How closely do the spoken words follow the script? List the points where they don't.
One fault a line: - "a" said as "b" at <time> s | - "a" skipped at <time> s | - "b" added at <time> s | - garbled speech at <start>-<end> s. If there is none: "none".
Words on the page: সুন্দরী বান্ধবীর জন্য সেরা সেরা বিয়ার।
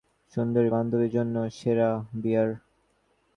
- "সেরা" skipped at 1.9 s